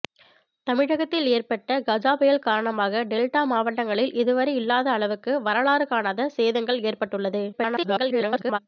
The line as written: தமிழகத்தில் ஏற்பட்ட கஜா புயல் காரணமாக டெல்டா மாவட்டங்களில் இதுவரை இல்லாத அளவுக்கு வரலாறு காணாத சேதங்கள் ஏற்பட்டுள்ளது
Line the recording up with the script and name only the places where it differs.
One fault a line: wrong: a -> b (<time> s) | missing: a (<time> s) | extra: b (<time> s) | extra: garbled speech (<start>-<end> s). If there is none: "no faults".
extra: garbled speech (7.5-8.6 s)